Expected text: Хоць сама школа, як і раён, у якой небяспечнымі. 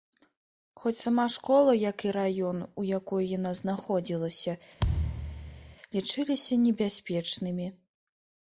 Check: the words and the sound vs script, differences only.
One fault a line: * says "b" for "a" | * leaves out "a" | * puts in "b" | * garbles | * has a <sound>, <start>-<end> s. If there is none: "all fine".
* puts in "яна знаходзілася лічыліся"
* has a thud, 4.8-5.8 s